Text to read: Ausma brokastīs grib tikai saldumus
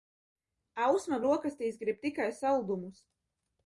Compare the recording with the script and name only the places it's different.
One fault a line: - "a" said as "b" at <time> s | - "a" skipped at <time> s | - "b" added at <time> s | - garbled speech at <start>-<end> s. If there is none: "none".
none